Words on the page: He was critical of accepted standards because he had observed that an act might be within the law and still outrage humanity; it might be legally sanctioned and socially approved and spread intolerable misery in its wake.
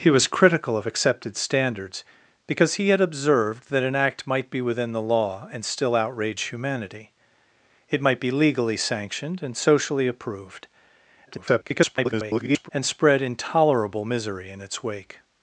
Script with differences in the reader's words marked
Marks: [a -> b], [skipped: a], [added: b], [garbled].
He was critical of accepted standards because he had observed that an act might be within the law and still outrage humanity; it might be legally sanctioned and socially approved [garbled] and spread intolerable misery in its wake.